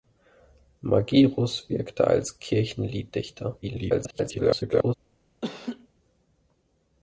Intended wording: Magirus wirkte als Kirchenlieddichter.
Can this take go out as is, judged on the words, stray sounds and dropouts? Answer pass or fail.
fail